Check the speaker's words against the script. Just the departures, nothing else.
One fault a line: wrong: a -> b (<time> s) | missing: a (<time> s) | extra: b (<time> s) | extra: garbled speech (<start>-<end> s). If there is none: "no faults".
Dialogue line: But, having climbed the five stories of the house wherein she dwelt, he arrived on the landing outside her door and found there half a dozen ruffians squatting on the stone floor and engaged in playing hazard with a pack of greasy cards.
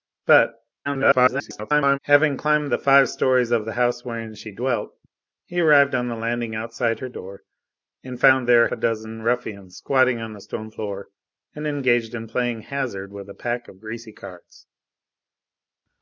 extra: garbled speech (0.8-2.0 s)
missing: half (8.7 s)